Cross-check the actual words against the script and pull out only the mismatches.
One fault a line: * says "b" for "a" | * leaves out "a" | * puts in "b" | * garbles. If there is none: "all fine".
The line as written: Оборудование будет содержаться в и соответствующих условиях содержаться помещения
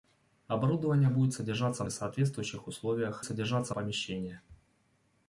all fine